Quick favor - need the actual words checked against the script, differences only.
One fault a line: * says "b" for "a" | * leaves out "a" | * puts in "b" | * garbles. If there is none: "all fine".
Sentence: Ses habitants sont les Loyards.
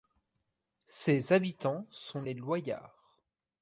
all fine